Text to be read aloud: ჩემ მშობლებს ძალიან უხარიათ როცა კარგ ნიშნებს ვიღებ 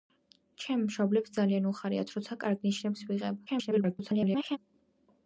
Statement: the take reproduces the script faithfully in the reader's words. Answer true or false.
false